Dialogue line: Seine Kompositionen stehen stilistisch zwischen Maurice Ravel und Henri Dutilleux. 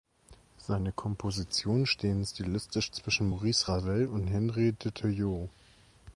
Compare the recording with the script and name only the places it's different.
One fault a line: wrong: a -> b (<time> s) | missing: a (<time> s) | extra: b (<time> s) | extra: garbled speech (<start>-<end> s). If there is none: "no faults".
no faults